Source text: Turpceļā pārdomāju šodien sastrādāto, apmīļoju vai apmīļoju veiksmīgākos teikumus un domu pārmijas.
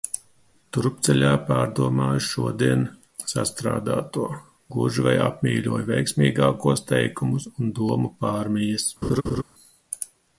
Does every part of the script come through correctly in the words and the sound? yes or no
no